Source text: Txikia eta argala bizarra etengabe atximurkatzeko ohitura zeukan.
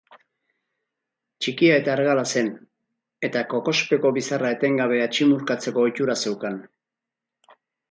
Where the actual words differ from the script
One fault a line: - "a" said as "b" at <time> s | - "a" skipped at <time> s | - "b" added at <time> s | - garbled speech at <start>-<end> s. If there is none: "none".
- "zen eta kokospeko" added at 2.4 s